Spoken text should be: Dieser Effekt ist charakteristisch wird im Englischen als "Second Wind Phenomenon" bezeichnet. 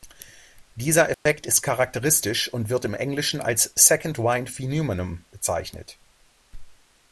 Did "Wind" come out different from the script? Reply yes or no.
no